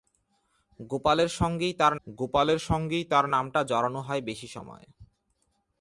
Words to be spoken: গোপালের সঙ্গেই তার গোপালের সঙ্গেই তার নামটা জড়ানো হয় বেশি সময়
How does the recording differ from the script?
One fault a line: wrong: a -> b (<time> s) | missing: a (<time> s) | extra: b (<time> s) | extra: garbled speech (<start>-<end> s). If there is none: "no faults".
no faults